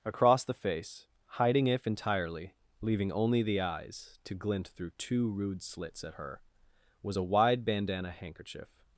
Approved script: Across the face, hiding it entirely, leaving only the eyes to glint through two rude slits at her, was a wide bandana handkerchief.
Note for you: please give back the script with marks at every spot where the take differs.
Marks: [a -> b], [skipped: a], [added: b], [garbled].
Across the face, hiding [it -> if] entirely, leaving only the eyes to glint through two rude slits at her, was a wide bandana handkerchief.